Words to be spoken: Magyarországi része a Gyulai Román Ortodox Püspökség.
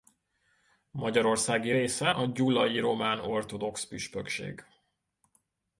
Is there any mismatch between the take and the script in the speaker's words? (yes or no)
no